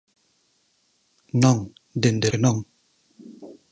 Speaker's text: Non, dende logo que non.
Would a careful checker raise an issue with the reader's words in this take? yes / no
yes